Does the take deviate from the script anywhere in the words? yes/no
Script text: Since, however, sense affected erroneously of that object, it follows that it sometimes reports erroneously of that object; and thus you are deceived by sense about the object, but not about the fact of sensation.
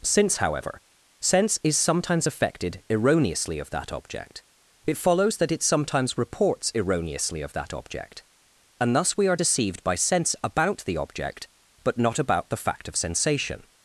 yes